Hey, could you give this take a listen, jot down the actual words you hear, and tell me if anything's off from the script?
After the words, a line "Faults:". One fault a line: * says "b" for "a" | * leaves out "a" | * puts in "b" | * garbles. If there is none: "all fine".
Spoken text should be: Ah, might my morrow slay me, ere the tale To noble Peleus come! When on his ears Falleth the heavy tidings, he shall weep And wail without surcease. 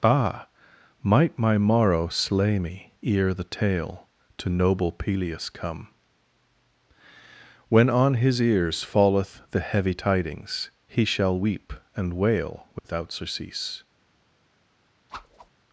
Ah, might my morrow slay me, ere the tale To noble Peleus come! When on his ears Falleth the heavy tidings, he shall weep And wail without surcease.
Faults:
all fine